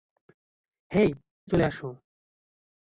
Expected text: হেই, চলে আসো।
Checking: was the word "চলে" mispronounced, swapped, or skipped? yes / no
no